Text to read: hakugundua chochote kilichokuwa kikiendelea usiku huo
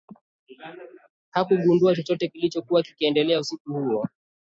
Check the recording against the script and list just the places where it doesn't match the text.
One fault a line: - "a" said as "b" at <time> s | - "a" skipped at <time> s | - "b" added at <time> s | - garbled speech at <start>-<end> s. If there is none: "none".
none